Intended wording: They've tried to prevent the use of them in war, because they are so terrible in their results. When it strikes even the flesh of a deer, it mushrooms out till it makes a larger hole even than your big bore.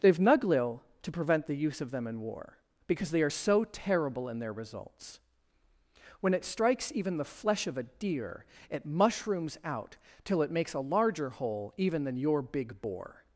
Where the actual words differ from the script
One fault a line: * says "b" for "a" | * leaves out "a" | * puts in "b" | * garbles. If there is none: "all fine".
* says "nuglil" for "tried"